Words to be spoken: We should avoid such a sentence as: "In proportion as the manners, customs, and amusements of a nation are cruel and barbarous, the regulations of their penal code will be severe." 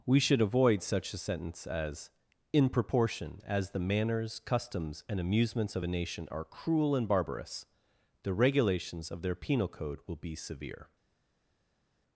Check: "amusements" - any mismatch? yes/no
no